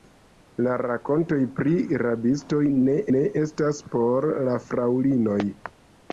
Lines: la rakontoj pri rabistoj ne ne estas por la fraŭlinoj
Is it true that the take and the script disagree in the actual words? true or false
false